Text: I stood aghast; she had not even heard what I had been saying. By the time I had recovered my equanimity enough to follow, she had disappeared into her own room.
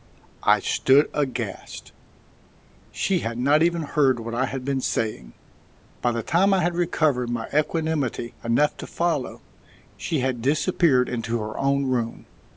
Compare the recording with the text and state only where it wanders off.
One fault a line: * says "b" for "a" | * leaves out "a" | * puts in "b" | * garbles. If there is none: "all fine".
all fine